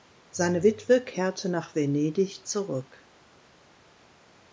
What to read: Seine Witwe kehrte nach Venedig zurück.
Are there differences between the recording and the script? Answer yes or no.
no